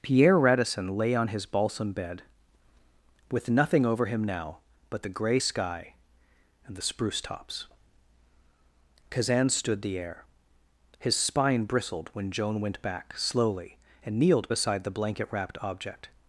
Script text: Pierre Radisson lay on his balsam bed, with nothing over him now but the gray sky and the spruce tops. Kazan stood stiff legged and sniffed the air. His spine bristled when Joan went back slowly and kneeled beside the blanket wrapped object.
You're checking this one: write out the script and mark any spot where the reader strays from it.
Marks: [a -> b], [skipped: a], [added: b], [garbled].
Pierre Radisson lay on his balsam bed, with nothing over him now but the gray sky and the spruce tops. Kazan stood [skipped: stiff legged and sniffed] the air. His spine bristled when Joan went back slowly and kneeled beside the blanket wrapped object.